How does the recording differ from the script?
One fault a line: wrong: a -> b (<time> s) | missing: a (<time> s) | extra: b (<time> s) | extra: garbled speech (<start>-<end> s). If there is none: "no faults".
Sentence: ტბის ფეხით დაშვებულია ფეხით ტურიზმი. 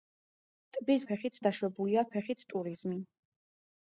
no faults